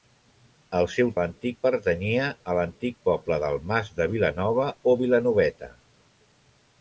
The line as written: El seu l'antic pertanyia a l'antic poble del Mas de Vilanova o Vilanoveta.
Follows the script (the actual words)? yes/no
yes